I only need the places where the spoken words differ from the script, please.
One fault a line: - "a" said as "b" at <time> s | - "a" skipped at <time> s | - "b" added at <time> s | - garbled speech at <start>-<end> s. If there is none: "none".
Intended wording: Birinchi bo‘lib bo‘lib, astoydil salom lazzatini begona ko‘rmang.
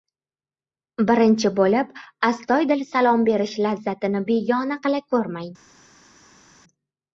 - "bo‘lib" skipped at 1.9 s
- "berish" added at 3.3 s
- "qila" added at 4.9 s